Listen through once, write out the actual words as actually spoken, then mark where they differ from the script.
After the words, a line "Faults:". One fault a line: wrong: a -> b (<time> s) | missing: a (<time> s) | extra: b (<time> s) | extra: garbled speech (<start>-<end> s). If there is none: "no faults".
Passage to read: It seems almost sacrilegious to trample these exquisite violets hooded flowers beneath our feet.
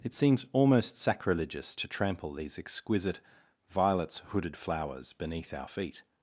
It seems almost sacrilegious to trample these exquisite violets hooded flowers beneath our feet.
Faults:
no faults